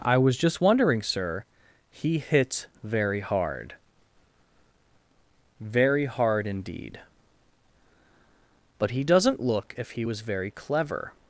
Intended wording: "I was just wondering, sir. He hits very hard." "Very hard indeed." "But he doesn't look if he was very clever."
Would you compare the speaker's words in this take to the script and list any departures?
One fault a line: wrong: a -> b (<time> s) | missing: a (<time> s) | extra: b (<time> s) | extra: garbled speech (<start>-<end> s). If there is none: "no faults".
no faults